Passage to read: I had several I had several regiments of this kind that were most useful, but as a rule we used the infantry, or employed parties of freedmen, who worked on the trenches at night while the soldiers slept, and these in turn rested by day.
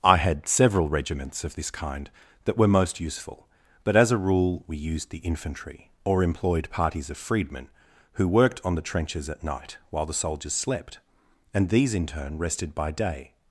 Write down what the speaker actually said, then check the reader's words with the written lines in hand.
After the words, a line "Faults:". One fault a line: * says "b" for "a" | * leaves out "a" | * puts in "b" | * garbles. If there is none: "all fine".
I had several regiments of this kind that were most useful, but as a rule we used the infantry, or employed parties of freedmen, who worked on the trenches at night while the soldiers slept, and these in turn rested by day.
Faults:
* leaves out "I had several"